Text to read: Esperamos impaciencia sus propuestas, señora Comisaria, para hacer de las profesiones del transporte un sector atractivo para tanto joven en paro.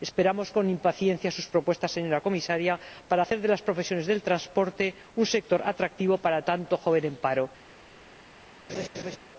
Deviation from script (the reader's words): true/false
true